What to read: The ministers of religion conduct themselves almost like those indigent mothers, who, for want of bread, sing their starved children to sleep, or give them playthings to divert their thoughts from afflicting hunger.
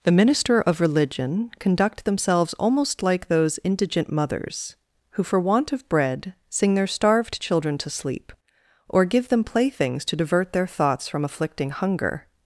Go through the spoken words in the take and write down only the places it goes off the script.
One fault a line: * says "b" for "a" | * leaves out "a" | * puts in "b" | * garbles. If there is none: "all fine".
* says "minister" for "ministers"